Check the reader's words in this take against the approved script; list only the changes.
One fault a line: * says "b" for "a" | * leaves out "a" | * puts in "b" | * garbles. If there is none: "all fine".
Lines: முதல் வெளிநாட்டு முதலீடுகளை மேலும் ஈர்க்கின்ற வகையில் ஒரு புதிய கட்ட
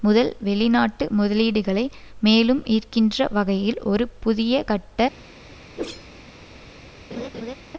all fine